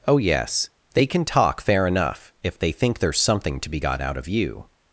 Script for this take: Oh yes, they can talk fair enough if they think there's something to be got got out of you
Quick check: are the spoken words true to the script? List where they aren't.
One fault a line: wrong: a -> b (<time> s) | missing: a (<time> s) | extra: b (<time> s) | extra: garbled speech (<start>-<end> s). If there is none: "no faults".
missing: got (4.0 s)